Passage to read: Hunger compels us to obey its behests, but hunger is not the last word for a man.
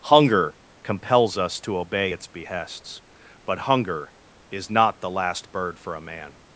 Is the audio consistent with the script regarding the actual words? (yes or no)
no